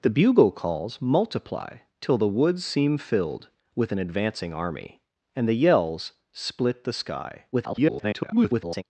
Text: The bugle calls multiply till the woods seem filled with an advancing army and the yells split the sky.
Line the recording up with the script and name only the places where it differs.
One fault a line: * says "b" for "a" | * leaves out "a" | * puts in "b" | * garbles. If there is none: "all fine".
* garbles